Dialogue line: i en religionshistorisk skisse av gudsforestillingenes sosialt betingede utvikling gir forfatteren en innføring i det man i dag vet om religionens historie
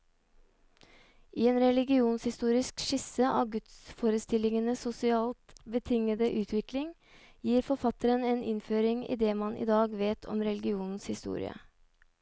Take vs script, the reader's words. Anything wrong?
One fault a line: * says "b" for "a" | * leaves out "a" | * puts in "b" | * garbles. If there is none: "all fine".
all fine